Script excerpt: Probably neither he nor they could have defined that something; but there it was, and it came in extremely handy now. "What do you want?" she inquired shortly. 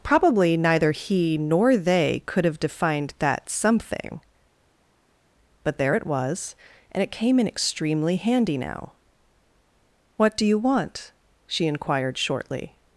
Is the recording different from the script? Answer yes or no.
no